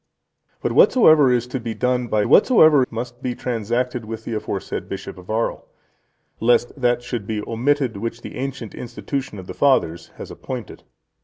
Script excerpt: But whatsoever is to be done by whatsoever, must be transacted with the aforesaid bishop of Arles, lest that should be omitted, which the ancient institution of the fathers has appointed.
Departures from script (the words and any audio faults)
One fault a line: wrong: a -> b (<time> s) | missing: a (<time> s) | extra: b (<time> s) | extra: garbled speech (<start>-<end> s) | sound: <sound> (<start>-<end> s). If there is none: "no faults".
no faults